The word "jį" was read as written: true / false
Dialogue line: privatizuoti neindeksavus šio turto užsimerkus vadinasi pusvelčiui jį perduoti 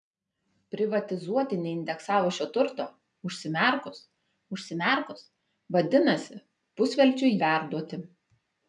false